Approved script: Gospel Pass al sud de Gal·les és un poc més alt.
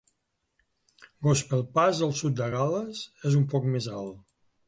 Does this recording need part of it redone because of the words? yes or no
no